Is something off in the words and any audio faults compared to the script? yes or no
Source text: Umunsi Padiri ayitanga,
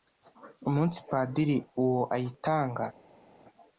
yes